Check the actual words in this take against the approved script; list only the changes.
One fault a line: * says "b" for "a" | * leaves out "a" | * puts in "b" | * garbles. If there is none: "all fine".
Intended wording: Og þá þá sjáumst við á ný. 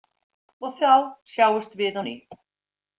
* leaves out "þá"